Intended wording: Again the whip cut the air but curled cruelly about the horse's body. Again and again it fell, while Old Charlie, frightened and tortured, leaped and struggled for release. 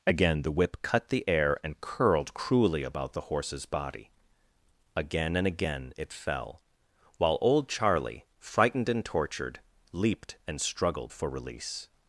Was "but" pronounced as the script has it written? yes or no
no